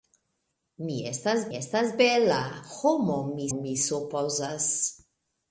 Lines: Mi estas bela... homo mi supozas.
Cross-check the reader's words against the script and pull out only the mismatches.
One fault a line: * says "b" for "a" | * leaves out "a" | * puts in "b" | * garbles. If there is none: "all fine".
* puts in "estas"
* puts in "mi"